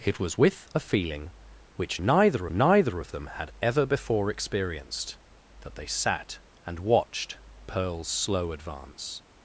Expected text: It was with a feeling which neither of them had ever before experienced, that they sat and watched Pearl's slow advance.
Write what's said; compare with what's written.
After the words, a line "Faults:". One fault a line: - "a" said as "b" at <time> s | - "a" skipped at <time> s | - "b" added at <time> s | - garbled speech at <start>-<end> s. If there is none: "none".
It was with a feeling which neither neither of them had ever before experienced, that they sat and watched Pearl's slow advance.
Faults:
- "neither" added at 2.5 s